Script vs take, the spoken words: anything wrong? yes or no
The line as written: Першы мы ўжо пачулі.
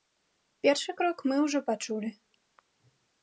yes